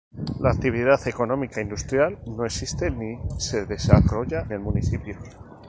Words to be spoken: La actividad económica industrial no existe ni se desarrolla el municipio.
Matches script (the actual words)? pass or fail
pass